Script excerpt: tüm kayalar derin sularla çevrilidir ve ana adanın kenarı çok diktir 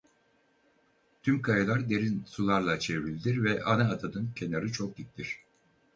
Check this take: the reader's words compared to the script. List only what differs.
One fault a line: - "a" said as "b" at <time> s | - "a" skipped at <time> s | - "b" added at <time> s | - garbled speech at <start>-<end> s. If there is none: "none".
none